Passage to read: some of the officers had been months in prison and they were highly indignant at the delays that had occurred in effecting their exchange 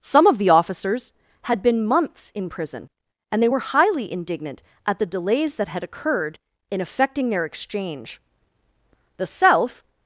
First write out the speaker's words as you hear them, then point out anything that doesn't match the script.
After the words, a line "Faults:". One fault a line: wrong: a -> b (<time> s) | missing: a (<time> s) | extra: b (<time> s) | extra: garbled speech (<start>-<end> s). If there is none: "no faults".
some of the officers had been months in prison and they were highly indignant at the delays that had occurred in effecting their exchange the south
Faults:
extra: the south (9.2 s)